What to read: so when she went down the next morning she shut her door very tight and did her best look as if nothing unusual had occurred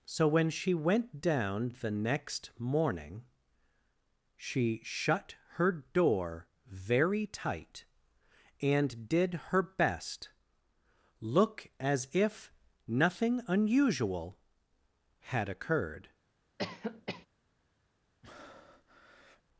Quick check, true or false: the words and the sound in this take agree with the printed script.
false